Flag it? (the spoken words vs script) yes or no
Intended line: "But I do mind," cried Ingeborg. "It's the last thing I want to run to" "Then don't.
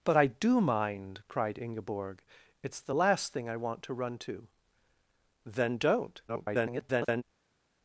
yes